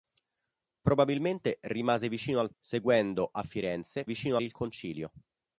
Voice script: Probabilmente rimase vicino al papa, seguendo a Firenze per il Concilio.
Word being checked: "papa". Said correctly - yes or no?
no